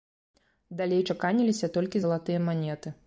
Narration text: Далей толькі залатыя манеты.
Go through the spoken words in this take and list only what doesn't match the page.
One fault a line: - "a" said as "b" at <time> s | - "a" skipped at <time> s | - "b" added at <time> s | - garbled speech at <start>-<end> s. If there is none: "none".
- "чаканіліся" added at 1.1 s